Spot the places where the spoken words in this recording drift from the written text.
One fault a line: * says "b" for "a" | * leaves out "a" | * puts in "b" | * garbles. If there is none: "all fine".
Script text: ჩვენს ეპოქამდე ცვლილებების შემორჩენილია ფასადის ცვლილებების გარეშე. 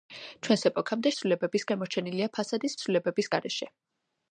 all fine